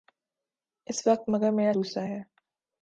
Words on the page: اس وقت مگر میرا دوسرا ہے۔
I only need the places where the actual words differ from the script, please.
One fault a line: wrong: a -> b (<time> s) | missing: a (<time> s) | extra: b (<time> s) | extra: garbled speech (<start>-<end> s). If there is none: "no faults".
no faults